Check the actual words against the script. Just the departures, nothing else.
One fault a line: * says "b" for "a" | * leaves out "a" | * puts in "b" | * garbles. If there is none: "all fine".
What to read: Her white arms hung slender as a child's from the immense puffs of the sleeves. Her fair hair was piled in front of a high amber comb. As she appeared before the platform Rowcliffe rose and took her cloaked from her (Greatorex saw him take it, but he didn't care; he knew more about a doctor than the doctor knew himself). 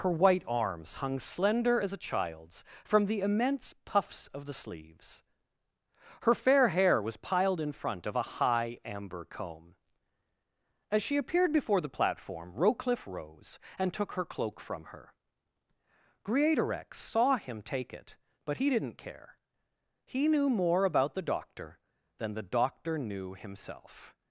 * says "cloak" for "cloaked"
* says "the" for "a"